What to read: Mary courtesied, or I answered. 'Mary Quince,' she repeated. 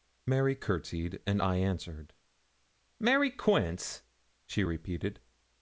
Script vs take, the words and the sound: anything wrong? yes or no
yes